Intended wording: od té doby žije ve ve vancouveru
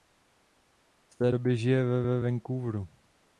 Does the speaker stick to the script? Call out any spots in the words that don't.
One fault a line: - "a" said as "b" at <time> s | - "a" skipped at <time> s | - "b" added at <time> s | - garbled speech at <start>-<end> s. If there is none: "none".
none